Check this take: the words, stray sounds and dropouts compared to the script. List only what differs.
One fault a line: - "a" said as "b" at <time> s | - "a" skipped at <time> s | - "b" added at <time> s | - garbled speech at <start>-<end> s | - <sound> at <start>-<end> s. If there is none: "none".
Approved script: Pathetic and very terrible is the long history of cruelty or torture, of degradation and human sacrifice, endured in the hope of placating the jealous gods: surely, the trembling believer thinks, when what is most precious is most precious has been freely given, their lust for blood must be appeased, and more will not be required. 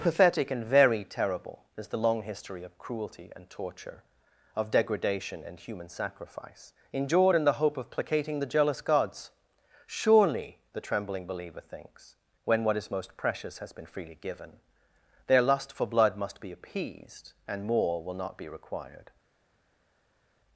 - "or" said as "and" at 3.4 s
- "is most precious" skipped at 13.6 s